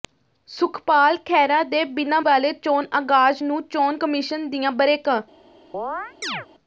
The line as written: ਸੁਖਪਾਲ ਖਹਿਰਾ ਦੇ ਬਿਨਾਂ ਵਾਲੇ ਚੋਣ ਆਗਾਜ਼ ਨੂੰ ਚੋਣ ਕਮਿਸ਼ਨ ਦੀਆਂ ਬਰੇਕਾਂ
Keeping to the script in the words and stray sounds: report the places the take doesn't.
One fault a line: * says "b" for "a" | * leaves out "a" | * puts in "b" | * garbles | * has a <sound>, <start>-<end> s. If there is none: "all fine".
* has a chirp, 5.7-6.5 s